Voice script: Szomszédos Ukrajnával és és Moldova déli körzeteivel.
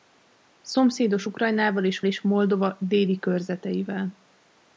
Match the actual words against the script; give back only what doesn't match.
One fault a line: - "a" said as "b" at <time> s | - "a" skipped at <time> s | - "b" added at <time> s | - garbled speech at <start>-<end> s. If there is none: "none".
none